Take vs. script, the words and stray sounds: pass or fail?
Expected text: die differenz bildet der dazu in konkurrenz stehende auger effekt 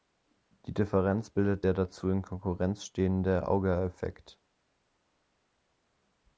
pass